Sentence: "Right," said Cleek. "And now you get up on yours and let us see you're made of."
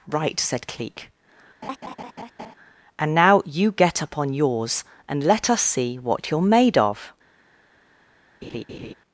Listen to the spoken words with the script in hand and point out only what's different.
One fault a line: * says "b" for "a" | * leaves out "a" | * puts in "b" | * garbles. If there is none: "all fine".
* puts in "what"